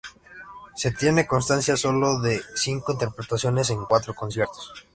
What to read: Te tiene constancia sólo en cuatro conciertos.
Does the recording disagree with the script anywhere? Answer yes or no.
yes